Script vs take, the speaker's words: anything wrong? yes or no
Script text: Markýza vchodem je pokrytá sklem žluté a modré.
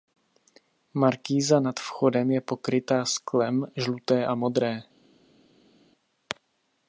yes